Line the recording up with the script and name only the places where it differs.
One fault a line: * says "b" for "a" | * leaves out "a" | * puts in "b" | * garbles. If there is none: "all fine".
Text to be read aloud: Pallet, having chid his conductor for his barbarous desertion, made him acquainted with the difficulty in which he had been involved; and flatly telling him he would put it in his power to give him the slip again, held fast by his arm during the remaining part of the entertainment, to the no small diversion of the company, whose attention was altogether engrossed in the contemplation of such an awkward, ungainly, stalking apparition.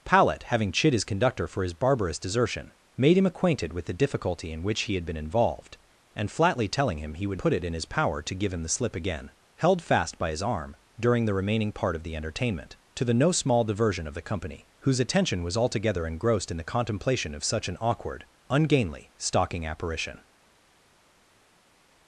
all fine